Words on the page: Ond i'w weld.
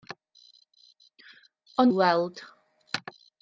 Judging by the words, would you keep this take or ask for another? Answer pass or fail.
pass